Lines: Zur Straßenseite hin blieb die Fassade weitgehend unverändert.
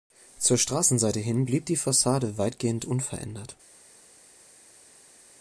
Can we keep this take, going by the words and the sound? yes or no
yes